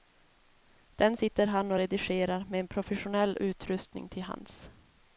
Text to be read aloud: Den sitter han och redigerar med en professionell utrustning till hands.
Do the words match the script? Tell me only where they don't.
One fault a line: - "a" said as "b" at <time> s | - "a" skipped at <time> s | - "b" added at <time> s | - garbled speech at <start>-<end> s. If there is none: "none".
none